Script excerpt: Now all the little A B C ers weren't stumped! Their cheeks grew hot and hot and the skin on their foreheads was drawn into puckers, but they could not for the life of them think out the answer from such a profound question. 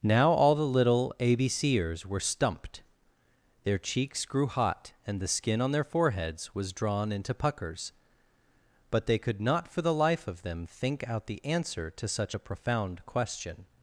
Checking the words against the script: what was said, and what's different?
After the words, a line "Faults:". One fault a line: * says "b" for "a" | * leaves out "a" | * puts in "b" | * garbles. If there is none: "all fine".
Now all the little A B C ers were stumped! Their cheeks grew hot and the skin on their foreheads was drawn into puckers, but they could not for the life of them think out the answer to such a profound question.
Faults:
* says "were" for "weren't"
* leaves out "hot and"
* says "to" for "from"